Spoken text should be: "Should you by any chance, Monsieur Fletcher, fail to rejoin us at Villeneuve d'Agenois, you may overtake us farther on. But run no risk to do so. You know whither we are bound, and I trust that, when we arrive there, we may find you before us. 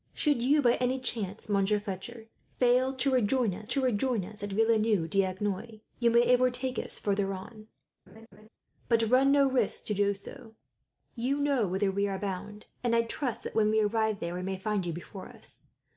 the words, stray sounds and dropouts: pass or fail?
fail